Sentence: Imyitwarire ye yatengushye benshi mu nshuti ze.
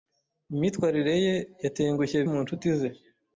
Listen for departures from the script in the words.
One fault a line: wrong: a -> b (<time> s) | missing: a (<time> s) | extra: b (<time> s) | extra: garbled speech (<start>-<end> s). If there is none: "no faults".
missing: benshi (2.2 s)